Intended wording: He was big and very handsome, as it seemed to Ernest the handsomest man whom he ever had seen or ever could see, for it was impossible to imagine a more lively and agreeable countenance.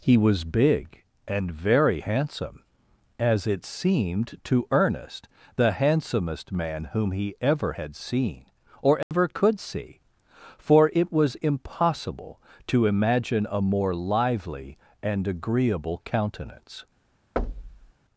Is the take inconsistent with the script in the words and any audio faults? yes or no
yes